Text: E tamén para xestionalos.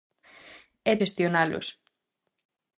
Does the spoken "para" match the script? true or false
false